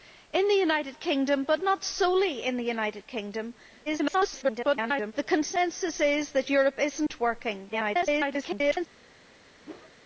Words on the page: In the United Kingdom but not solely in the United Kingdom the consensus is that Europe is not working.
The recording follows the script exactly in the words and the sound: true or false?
false